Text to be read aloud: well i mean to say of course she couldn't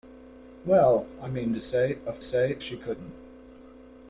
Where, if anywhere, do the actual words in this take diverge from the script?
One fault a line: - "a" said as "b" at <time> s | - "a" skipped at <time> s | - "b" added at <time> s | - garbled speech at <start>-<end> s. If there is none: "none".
- "course" said as "say" at 2.2 s